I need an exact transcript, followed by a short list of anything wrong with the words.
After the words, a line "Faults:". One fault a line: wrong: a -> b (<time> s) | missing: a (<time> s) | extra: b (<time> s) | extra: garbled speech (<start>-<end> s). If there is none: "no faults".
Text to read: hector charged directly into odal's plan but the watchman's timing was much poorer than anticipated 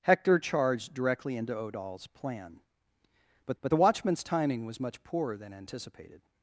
hector charged directly into odal's plan but but the watchman's timing was much poorer than anticipated
Faults:
extra: but (3.6 s)